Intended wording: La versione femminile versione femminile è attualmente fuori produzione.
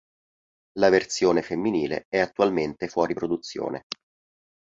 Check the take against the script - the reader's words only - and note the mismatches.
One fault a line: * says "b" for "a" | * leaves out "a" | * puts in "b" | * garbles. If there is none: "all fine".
* leaves out "versione femminile"